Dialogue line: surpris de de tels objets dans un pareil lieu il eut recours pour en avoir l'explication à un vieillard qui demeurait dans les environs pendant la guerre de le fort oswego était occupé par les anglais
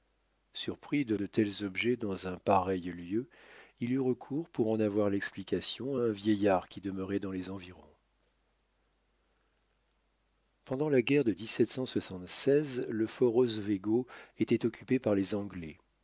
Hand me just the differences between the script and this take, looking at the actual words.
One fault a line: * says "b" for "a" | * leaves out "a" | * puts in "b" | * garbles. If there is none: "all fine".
all fine